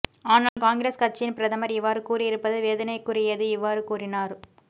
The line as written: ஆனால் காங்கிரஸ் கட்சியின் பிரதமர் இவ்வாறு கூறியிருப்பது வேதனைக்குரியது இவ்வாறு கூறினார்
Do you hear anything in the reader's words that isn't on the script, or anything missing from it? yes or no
no